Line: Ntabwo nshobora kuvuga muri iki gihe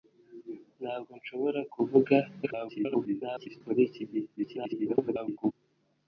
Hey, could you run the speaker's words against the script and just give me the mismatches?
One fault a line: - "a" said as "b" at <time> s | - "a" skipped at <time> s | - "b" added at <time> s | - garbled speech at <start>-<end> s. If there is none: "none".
- garbled speech at 2.4-3.6 s
- garbled speech at 4.4-5.5 s